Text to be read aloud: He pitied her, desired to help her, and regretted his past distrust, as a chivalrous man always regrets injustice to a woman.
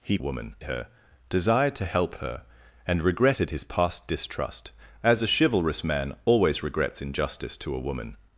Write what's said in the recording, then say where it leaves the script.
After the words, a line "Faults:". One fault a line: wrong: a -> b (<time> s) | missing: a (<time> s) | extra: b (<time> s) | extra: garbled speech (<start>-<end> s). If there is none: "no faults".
He woman her, desired to help her, and regretted his past distrust, as a chivalrous man always regrets injustice to a woman.
Faults:
wrong: pitied -> woman (0.2 s)